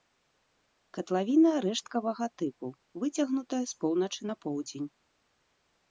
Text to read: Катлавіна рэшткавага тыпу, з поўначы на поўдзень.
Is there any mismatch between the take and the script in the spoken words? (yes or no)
yes